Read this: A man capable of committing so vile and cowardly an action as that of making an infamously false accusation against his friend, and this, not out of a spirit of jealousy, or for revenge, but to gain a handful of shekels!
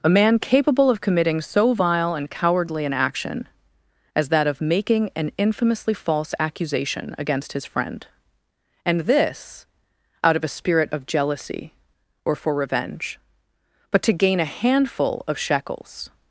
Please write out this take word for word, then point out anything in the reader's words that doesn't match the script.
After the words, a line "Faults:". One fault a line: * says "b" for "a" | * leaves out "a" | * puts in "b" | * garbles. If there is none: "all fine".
A man capable of committing so vile and cowardly an action as that of making an infamously false accusation against his friend, and this, out of a spirit of jealousy, or for revenge, but to gain a handful of shekels!
Faults:
* leaves out "not"